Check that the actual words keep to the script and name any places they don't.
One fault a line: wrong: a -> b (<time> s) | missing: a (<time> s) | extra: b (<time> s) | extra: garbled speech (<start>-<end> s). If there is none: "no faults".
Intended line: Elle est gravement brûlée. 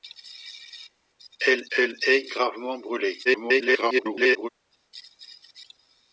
extra: elle (1.8 s)
extra: garbled speech (3.2-4.5 s)